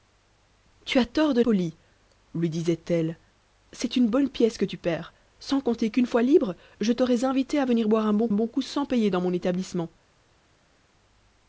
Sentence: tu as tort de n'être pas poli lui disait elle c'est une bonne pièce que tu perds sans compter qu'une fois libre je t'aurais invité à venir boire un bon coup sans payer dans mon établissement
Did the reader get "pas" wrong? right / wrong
wrong